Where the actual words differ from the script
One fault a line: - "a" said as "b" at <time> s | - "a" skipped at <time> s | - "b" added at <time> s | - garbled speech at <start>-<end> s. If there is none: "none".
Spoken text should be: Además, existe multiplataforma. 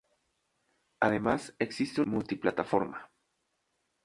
none